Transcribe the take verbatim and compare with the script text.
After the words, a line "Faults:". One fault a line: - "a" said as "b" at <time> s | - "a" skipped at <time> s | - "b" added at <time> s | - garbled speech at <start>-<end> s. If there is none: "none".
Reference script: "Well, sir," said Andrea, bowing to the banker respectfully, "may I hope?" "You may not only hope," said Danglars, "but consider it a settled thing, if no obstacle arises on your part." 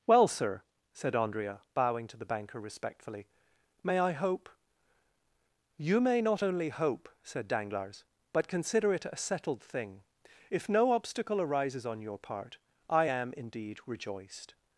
"Well, sir," said Andrea, bowing to the banker respectfully, "may I hope?" "You may not only hope," said Danglars, "but consider it a settled thing, if no obstacle arises on your part." "I am, indeed, rejoiced
Faults:
- "I am indeed rejoiced" added at 12.9 s